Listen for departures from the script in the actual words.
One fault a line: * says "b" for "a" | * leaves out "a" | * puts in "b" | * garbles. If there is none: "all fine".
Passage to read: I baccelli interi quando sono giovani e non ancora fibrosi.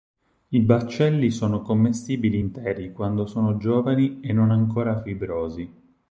* puts in "sono commestibili"